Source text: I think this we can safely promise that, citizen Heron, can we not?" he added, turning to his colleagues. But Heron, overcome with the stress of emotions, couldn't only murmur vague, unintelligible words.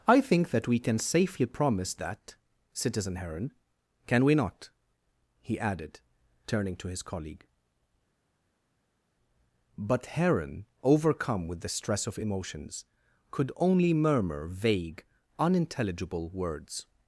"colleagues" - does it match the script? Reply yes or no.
no